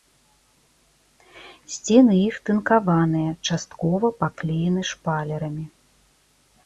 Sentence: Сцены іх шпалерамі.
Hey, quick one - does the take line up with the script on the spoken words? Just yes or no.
no